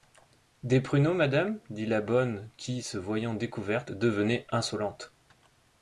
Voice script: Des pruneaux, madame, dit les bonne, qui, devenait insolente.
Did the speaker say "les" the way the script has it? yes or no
no